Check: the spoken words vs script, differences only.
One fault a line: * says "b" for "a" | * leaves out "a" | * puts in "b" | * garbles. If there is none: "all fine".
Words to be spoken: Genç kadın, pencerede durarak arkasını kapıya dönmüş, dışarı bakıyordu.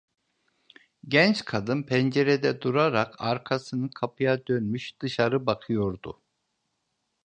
all fine